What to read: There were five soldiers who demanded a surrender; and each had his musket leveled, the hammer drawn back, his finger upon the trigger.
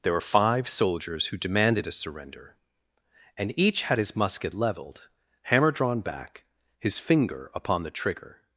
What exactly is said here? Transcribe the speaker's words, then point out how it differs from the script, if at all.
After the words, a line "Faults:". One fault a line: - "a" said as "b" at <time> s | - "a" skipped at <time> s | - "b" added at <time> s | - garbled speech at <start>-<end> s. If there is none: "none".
There were five soldiers who demanded a surrender; and each had his musket leveled, hammer drawn back, his finger upon the trigger.
Faults:
- "the" skipped at 5.1 s